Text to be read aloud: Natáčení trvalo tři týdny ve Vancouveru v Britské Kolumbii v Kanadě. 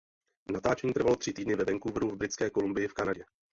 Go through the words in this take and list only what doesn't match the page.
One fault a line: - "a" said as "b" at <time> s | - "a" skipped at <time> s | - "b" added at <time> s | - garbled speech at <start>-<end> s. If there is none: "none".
none